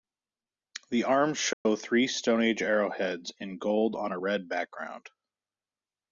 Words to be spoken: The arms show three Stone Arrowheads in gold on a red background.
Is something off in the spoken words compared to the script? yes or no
yes